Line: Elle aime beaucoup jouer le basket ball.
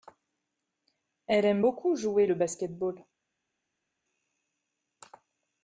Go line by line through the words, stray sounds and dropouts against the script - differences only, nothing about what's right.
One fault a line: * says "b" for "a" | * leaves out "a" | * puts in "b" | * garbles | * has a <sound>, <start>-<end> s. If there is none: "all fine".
all fine